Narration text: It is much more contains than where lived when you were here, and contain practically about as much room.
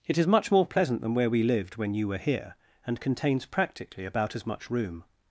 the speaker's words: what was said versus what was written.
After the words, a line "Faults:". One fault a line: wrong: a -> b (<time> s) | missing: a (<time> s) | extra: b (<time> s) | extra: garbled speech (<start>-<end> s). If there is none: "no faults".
It is much more pleasant than where we lived when you were here, and contains practically about as much room.
Faults:
wrong: contains -> pleasant (0.7 s)
extra: we (1.3 s)
wrong: contain -> contains (3.0 s)